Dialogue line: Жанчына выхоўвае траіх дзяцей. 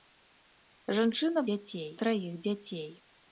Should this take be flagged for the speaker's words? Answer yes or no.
yes